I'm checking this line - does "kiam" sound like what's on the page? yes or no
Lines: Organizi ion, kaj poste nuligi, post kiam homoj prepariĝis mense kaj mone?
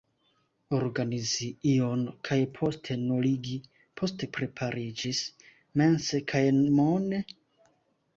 no